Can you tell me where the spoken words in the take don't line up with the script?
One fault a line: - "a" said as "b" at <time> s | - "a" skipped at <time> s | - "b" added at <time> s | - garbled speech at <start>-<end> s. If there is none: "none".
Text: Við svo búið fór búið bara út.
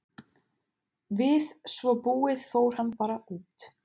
- "búið" said as "hann" at 2.8 s